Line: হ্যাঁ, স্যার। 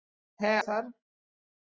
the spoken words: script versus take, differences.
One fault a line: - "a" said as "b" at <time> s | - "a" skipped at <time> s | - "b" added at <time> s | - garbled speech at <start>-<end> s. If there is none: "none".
none